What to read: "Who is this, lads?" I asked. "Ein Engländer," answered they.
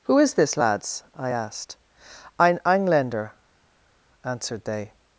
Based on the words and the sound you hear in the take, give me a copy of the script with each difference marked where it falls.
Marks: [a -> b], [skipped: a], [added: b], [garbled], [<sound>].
"Who is this, lads?" I asked. "Ein Engländer," answered they.